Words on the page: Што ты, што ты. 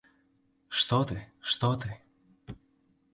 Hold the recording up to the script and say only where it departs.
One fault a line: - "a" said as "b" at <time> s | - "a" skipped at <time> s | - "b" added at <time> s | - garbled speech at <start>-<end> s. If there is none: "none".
none